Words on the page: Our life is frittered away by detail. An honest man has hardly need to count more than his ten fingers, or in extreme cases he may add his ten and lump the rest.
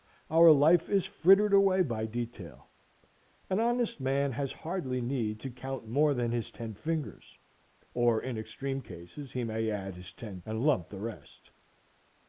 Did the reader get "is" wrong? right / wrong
right